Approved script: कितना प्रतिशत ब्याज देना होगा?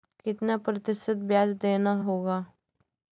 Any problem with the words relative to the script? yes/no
no